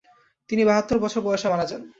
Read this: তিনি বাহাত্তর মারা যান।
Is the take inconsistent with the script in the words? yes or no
yes